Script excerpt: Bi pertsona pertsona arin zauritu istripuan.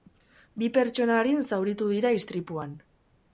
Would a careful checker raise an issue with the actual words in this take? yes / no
yes